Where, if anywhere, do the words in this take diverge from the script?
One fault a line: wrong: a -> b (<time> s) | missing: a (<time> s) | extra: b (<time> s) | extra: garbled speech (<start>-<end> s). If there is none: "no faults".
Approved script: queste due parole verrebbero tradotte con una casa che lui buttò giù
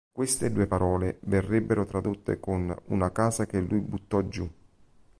no faults